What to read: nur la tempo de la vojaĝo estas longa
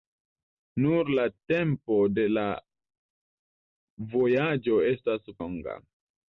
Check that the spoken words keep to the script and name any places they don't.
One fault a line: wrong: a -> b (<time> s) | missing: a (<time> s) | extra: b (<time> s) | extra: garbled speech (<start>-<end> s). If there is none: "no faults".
no faults